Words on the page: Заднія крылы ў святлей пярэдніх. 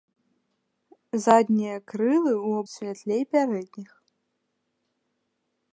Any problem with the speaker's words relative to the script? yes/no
no